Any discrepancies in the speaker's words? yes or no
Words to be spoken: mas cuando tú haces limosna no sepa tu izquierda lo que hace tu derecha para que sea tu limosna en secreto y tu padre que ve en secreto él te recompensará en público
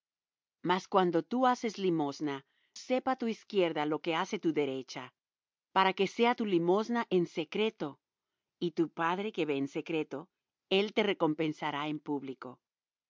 yes